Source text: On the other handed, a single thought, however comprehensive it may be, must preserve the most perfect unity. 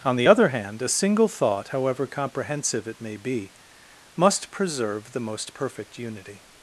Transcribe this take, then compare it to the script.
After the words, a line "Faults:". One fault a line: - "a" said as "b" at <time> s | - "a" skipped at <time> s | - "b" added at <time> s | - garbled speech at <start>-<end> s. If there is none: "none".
On the other hand, a single thought, however comprehensive it may be, must preserve the most perfect unity.
Faults:
- "handed" said as "hand" at 0.5 s